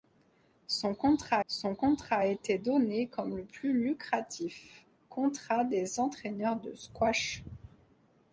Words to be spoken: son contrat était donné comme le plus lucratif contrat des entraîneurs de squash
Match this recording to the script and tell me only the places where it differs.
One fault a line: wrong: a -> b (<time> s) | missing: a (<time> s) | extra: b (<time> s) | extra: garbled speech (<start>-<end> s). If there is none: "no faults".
extra: son contrat (1.4 s)